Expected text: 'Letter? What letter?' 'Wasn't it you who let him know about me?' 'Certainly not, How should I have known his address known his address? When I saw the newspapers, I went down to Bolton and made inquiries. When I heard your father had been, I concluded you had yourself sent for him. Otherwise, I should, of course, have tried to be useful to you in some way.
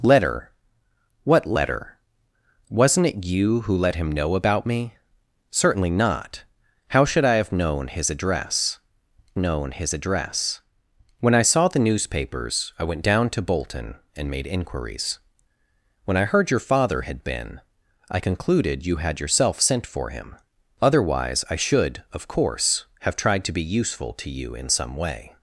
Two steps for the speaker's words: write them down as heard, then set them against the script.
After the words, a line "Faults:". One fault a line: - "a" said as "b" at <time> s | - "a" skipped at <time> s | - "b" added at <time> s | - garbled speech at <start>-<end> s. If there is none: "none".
'Letter? What letter?' 'Wasn't it you who let him know about me?' 'Certainly not, How should I have known his address known his address? When I saw the newspapers, I went down to Bolton and made inquiries. When I heard your father had been, I concluded you had yourself sent for him. Otherwise, I should, of course, have tried to be useful to you in some way.
Faults:
none